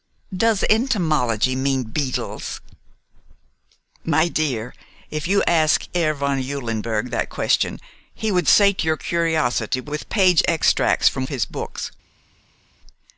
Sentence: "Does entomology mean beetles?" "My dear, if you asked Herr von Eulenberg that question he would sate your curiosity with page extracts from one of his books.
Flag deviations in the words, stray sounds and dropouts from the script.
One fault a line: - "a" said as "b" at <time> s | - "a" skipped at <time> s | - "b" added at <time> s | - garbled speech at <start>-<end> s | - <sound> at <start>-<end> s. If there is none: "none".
- "one" skipped at 11.3 s